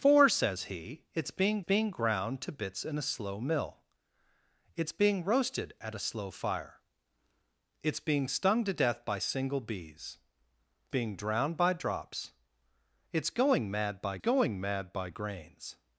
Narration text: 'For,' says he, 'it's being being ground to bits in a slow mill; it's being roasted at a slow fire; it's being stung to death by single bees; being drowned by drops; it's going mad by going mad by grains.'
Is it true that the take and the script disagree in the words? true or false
false